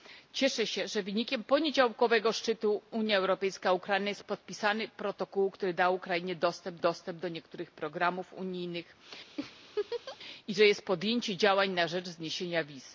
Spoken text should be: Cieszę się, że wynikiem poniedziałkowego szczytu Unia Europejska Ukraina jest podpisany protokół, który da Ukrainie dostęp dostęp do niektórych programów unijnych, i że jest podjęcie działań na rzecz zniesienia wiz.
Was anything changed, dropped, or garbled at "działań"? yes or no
no